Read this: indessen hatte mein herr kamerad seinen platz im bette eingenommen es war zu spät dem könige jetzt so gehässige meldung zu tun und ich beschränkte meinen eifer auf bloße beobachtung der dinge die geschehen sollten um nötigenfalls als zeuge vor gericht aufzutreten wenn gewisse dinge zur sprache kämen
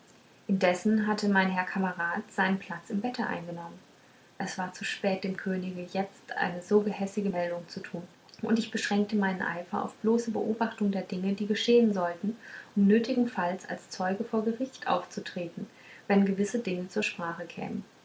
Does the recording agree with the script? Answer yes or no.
no